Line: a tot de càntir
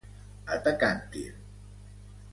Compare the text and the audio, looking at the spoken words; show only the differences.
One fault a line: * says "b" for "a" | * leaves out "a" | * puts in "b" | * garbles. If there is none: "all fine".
* leaves out "tot"